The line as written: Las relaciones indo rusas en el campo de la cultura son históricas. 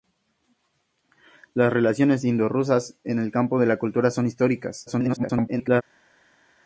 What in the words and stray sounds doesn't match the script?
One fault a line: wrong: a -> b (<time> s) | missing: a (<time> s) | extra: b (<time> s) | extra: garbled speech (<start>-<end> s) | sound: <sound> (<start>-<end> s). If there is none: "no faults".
extra: garbled speech (4.9-5.8 s)